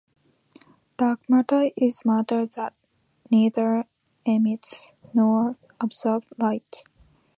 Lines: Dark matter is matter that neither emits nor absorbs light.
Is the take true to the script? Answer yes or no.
yes